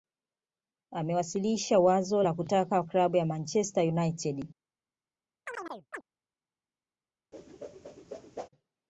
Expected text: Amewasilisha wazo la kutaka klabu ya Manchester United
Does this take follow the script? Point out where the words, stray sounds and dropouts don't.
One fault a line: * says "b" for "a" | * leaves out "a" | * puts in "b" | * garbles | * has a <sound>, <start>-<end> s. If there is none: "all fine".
* has a chirp, 5.5-6.0 s
* has a whoosh, 7.3-8.5 s